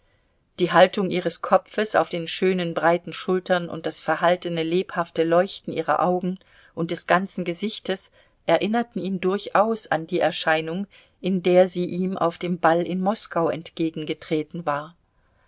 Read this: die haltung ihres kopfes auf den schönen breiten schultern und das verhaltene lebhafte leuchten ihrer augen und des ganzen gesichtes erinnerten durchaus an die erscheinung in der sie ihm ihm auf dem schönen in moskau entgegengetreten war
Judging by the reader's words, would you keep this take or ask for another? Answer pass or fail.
fail